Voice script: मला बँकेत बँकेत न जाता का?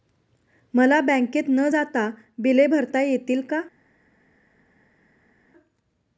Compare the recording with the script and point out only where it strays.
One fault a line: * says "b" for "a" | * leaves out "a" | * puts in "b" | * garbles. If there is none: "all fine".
* leaves out "बँकेत"
* puts in "बिले भरता येतील"